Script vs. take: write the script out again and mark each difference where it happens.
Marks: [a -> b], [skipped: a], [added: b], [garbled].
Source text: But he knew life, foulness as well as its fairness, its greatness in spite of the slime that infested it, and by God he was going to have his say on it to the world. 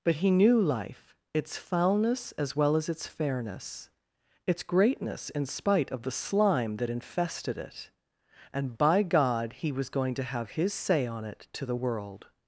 But he knew life, [added: its] foulness as well as its fairness, its greatness in spite of the slime that infested it, and by God he was going to have his say on it to the world.